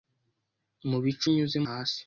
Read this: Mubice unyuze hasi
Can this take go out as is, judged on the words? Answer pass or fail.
pass